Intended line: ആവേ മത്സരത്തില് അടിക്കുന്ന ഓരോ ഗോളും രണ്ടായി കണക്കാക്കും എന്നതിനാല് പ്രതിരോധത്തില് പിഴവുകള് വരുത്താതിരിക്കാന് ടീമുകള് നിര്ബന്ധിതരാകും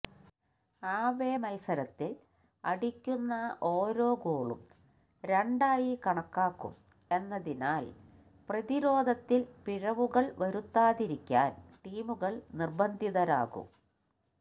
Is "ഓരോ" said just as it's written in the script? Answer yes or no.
yes